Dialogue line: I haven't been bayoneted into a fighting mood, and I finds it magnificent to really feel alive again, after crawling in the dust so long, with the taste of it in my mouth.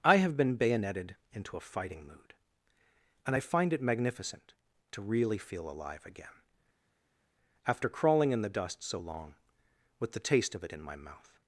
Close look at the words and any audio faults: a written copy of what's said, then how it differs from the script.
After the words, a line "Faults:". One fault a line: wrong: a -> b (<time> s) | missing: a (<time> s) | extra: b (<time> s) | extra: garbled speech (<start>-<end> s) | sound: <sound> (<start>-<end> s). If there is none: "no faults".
I have been bayoneted into a fighting mood, and I find it magnificent to really feel alive again, after crawling in the dust so long, with the taste of it in my mouth.
Faults:
wrong: haven't -> have (0.1 s)
wrong: finds -> find (3.4 s)